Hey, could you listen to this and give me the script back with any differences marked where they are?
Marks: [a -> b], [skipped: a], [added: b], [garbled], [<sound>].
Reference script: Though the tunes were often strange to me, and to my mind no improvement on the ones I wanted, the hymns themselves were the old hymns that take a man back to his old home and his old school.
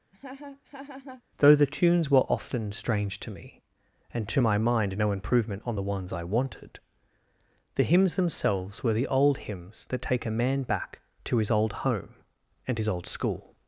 [laugh] Though the tunes were often strange to me, and to my mind no improvement on the ones I wanted, the hymns themselves were the old hymns that take a man back to his old home and his old school.